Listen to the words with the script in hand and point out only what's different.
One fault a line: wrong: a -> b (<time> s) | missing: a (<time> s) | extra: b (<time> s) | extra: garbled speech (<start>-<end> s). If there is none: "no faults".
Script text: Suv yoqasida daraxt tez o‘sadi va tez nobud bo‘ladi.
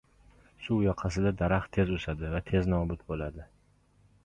no faults